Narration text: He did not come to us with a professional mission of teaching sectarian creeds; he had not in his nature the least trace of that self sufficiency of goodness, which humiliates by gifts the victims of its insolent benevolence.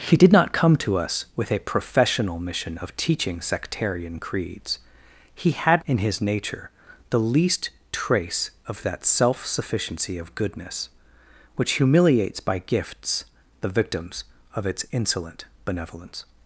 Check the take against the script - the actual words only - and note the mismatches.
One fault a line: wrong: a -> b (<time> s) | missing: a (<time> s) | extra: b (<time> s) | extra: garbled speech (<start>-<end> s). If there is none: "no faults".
missing: not (5.8 s)